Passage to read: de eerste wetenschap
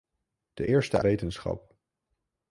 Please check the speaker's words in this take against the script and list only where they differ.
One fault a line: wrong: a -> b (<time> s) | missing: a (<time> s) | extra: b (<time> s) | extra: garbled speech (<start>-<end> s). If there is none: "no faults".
no faults